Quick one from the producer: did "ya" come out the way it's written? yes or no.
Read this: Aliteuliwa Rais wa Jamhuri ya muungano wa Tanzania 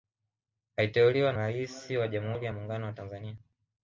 yes